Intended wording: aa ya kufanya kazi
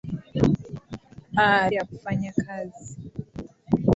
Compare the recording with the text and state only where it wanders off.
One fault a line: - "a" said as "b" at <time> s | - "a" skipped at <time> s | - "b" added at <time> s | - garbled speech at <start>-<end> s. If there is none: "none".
none